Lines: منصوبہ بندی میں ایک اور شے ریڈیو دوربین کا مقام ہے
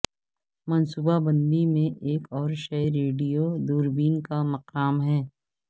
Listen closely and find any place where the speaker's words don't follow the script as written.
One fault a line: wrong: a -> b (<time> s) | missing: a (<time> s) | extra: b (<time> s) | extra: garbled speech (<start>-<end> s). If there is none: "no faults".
no faults